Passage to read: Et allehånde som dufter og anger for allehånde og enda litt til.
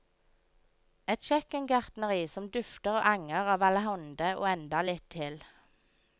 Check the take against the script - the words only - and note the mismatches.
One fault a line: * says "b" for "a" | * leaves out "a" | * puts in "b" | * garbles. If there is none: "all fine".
* says "kjøkkengartneri" for "allehånde"
* says "av" for "for"